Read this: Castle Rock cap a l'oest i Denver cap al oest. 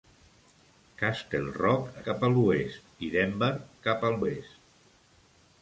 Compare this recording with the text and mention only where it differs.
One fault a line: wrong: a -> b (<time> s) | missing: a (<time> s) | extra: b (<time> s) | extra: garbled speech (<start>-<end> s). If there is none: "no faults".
no faults